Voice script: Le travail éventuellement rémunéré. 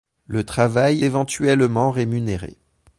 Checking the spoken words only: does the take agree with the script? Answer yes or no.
yes